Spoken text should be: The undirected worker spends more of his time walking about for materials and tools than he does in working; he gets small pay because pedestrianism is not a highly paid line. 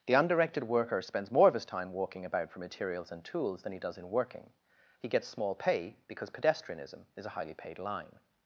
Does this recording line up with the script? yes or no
no